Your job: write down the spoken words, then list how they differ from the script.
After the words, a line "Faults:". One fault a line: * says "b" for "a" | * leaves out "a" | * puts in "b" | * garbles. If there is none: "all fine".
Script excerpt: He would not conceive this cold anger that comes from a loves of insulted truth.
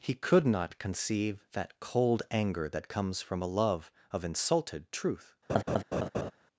He could not conceive that cold anger that comes from a love of insulted truth.
Faults:
* says "could" for "would"
* says "that" for "this"
* says "love" for "loves"